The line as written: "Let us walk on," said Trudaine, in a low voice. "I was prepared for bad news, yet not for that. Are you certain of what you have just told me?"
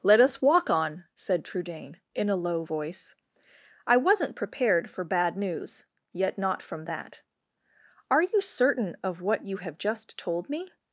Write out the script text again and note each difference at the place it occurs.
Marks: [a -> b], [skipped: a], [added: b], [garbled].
"Let us walk on," said Trudaine, in a low voice. "I [was -> wasn't] prepared for bad news, yet not [for -> from] that. Are you certain of what you have just told me?"